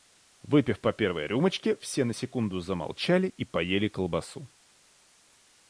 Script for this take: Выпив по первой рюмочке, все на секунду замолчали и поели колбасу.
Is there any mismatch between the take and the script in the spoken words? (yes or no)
no